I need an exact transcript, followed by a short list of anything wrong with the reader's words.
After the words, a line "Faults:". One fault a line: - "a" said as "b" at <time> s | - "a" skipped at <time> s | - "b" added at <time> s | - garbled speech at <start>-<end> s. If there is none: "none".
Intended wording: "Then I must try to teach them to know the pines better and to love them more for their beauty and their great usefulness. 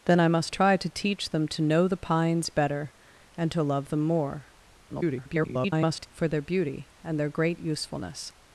"Then I must try to teach them to know the pines better and to love them more [garbled] for their beauty and their great usefulness.
Faults:
- garbled speech at 4.9-6.1 s